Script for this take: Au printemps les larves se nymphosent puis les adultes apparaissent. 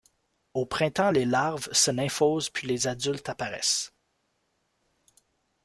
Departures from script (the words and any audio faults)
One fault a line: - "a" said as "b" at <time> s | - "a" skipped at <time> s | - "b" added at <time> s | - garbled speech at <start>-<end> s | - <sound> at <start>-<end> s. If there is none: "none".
none